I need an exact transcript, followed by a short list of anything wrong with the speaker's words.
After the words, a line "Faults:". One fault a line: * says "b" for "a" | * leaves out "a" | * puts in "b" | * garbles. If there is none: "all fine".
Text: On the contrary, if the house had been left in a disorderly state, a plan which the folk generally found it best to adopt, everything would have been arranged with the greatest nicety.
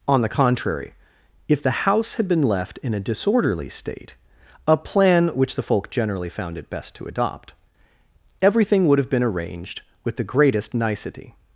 On the contrary, if the house had been left in a disorderly state, a plan which the folk generally found it best to adopt, everything would have been arranged with the greatest nicety.
Faults:
all fine